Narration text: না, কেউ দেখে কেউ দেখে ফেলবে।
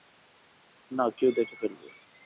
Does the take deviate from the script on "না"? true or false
false